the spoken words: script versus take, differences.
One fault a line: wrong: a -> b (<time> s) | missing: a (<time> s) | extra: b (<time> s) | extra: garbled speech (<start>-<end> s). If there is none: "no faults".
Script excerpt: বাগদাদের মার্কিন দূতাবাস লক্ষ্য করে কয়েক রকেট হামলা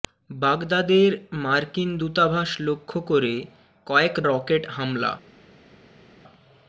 no faults